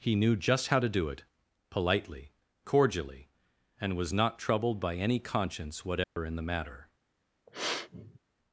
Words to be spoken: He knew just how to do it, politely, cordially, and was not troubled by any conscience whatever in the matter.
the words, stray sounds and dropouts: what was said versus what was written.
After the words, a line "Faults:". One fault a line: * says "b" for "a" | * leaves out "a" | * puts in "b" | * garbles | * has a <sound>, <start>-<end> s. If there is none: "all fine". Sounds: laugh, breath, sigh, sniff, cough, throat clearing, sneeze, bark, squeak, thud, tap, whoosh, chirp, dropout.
He knew just how to do it, politely, cordially, and was not troubled by any conscience whatever in the matter.
Faults:
* has a dropout, 6.0-6.2 s
* has a sniff, 7.5-8.2 s